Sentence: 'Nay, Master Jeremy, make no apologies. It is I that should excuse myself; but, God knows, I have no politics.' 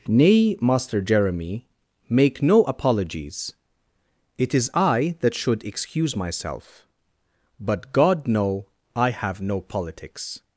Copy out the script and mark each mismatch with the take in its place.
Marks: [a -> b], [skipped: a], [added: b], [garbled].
'Nay, Master Jeremy, make no apologies. It is I that should excuse myself; but, God [knows, -> know] I have no politics.'